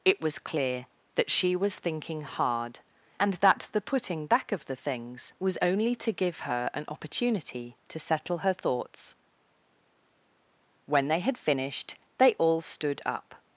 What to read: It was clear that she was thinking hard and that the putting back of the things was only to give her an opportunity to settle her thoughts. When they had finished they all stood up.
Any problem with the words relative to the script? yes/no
no